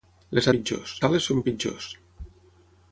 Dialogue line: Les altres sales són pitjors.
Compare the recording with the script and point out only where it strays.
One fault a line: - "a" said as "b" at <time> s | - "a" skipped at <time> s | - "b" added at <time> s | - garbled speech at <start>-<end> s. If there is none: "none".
- "altres" said as "pitjors" at 0.6 s